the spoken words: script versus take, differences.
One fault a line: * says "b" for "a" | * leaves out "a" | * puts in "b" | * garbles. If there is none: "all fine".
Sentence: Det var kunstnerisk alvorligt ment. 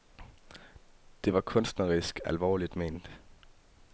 all fine